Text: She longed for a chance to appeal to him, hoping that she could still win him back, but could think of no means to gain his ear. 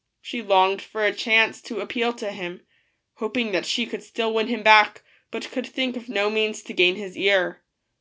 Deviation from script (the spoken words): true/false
false